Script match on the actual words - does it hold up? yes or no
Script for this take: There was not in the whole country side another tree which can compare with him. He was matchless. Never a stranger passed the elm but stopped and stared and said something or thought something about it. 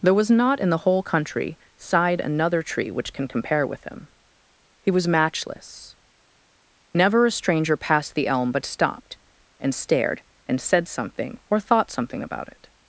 yes